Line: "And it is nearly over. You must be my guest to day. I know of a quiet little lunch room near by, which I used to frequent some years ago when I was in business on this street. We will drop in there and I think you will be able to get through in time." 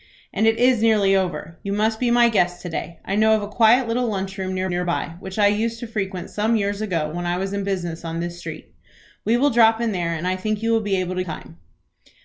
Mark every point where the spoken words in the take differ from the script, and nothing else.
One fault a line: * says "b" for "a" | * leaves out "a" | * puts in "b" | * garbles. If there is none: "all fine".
* puts in "near"
* leaves out "get through in"